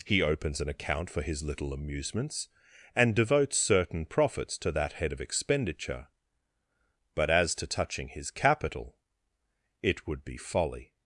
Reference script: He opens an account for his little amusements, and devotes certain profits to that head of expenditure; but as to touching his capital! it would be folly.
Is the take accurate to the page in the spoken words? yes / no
yes